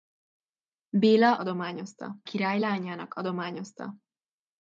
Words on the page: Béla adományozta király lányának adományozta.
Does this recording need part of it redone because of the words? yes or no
no